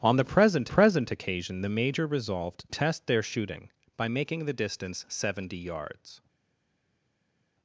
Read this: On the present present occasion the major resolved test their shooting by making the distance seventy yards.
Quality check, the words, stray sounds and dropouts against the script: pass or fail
pass